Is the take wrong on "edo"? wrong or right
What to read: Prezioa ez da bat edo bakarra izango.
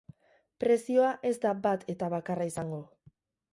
wrong